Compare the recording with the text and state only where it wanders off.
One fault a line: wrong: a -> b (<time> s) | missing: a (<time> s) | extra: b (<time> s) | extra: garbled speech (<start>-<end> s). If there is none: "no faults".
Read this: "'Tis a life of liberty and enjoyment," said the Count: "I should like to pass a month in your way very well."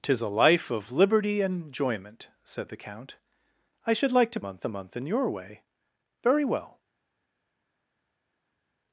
wrong: pass -> month (4.4 s)